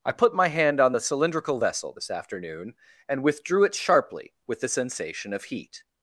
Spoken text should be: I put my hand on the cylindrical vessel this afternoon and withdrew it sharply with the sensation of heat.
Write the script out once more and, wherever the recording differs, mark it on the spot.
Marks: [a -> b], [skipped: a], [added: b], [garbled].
I put my hand on the cylindrical vessel this afternoon and withdrew it sharply with the sensation of heat.